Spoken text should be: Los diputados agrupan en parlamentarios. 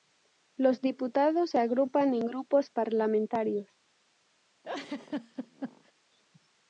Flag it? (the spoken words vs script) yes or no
yes